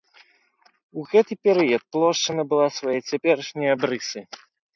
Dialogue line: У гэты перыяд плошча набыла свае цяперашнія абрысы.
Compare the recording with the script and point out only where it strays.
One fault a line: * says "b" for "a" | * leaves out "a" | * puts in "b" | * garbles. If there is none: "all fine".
all fine